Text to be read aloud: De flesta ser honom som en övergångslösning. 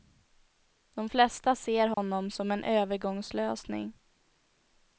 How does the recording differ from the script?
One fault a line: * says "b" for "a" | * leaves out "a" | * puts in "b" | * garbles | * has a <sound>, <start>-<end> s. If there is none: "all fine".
* has a dropout, 1.9-2.0 s